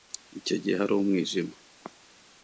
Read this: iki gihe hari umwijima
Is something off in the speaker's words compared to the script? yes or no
yes